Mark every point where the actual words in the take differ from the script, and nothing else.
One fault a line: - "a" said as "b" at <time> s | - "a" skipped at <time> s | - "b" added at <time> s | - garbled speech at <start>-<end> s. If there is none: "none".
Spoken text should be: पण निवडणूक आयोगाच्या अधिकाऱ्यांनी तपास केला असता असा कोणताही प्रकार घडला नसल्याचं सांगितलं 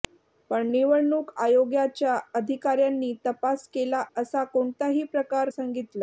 - "असता" skipped at 4.0 s
- "घडला नसल्याचं" skipped at 5.5 s